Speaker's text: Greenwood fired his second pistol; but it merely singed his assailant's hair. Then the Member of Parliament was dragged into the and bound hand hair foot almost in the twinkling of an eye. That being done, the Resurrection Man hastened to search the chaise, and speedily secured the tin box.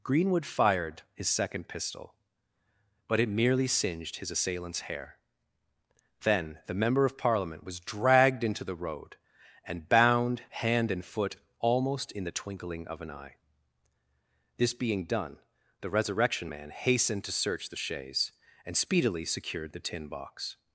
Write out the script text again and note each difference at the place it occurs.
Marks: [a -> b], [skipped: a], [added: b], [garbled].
Greenwood fired his second pistol; but it merely singed his assailant's hair. Then the Member of Parliament was dragged into the [added: road] and bound hand [hair -> and] foot almost in the twinkling of an eye. [That -> This] being done, the Resurrection Man hastened to search the chaise, and speedily secured the tin box.